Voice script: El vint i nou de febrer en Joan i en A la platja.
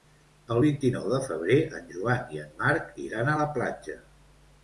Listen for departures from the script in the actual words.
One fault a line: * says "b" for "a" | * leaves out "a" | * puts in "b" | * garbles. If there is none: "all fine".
* puts in "Marc iran"